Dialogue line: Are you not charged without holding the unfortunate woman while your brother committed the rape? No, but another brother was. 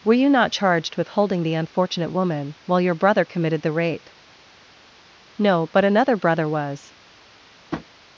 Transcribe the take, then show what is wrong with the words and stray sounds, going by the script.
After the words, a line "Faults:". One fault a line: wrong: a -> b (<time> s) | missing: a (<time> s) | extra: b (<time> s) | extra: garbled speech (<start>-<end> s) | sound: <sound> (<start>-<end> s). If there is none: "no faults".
Were you not charged with holding the unfortunate woman while your brother committed the rape? No, but another brother was.
Faults:
wrong: Are -> Were (0.0 s)
wrong: without -> with (1.0 s)
sound: tap (7.7-7.9 s)